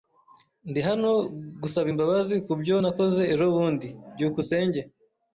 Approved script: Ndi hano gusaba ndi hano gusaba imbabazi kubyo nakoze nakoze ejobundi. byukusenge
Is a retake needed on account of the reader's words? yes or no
yes